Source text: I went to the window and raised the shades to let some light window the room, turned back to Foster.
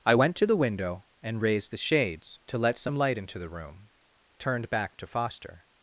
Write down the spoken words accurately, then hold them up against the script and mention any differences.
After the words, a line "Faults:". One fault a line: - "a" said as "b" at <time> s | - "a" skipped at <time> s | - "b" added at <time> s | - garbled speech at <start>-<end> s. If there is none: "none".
I went to the window and raised the shades to let some light into the room, turned back to Foster.
Faults:
- "window" said as "into" at 3.2 s